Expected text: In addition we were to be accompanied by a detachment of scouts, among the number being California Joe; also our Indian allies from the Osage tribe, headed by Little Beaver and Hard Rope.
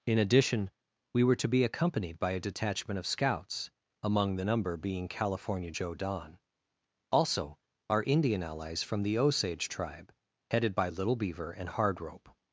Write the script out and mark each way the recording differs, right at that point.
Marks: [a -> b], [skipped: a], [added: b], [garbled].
In addition we were to be accompanied by a detachment of scouts, among the number being California Joe; [added: don] also our Indian allies from the Osage tribe, headed by Little Beaver and Hard Rope.